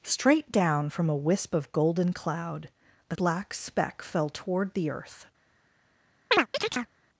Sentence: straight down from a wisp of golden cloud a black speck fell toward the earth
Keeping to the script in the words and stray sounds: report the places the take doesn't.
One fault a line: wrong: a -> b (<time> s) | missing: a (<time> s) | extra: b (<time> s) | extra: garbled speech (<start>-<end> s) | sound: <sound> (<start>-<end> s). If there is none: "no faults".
sound: chirp (6.3-6.9 s)